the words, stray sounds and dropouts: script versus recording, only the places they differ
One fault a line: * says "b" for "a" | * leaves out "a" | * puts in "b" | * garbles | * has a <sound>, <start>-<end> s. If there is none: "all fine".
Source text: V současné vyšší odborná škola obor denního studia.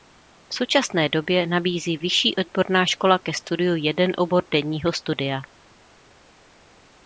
* puts in "době nabízí"
* puts in "ke studiu jeden"